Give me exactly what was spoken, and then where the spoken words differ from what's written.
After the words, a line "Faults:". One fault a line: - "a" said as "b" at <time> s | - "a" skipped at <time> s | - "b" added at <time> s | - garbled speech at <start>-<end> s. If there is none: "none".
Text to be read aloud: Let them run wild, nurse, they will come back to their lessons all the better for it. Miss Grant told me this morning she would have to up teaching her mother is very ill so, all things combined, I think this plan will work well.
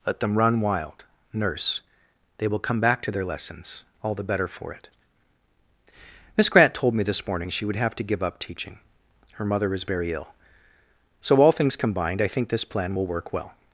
Let them run wild, nurse, they will come back to their lessons all the better for it. Miss Grant told me this morning she would have to give up teaching her mother is very ill so, all things combined, I think this plan will work well.
Faults:
- "give" added at 8.0 s